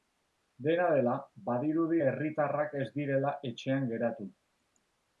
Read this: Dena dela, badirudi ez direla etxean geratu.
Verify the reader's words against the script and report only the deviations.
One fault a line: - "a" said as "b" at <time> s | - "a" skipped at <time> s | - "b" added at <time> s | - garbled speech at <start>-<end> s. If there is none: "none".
- "herritarrak" added at 2.0 s